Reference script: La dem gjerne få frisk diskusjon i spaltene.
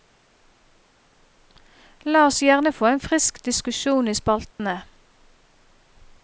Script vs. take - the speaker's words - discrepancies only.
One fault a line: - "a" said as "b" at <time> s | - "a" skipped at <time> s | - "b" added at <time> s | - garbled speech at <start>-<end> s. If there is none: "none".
- "dem" said as "oss" at 2.2 s
- "en" added at 2.9 s